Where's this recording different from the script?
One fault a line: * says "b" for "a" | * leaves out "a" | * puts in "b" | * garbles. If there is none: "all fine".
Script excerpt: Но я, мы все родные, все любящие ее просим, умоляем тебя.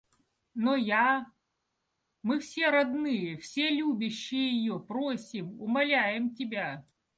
all fine